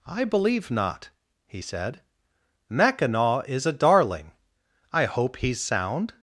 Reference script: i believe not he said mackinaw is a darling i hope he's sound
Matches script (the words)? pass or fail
pass